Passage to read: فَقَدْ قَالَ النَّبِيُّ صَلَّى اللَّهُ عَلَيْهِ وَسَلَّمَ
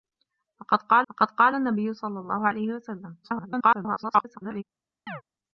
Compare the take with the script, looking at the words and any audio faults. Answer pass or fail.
fail